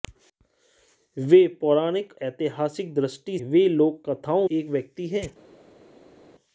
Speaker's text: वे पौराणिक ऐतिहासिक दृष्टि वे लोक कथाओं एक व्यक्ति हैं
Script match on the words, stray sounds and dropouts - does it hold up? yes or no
yes